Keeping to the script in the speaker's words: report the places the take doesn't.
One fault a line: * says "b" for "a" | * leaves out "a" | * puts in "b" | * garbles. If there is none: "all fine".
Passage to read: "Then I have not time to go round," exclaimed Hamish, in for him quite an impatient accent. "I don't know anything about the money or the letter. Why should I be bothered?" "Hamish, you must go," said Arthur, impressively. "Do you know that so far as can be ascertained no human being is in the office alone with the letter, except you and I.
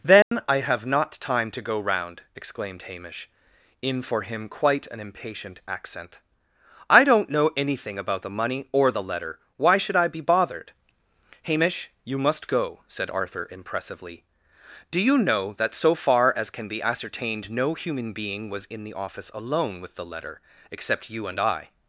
* says "was" for "is"